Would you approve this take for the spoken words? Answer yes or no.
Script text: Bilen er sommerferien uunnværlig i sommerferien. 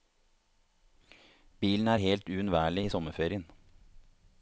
no